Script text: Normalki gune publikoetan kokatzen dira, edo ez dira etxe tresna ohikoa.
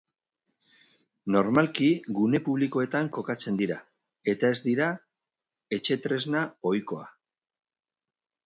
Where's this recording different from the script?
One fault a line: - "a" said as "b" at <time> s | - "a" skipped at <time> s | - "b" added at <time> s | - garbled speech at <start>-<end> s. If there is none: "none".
- "edo" said as "eta" at 4.3 s